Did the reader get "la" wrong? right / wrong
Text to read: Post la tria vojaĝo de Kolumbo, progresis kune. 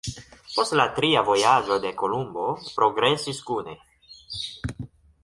right